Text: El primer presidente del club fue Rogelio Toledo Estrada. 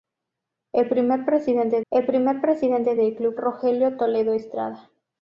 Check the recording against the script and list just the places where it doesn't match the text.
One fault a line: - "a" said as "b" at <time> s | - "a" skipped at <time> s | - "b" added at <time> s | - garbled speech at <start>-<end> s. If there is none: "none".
- "el primer presidente" added at 1.9 s
- "fue" skipped at 3.4 s